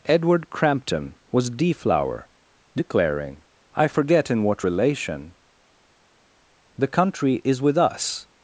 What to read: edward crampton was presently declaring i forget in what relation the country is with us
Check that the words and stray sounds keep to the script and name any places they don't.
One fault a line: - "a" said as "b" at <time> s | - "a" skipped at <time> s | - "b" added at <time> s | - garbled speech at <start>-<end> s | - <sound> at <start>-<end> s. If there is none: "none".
- "presently" said as "deflower" at 1.5 s